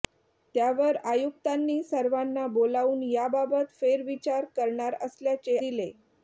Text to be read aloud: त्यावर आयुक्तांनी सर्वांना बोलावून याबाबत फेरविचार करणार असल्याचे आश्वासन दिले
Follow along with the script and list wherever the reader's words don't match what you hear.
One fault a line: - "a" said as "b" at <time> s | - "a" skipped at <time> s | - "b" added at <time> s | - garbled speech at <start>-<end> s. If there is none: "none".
- "आश्वासन" skipped at 5.6 s